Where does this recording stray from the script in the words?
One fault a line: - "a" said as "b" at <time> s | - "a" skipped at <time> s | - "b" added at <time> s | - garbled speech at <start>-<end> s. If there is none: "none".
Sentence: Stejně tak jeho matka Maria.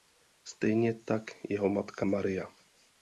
none